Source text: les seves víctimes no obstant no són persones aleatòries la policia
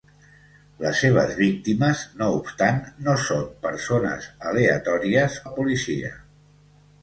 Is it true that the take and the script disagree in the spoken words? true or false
false